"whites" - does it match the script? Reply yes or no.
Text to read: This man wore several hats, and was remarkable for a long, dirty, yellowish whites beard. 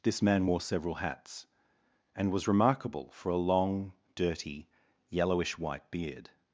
no